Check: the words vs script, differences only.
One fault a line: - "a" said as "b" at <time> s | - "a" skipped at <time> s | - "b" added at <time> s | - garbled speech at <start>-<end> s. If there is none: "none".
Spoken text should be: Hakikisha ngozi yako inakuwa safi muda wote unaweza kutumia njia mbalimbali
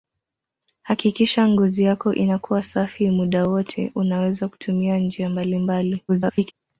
- garbled speech at 6.1-6.5 s